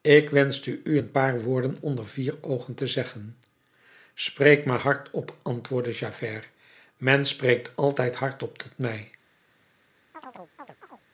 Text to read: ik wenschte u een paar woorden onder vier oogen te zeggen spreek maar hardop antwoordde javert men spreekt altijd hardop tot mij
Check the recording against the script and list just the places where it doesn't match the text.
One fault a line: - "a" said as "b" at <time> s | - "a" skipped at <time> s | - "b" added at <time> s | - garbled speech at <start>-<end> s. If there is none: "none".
none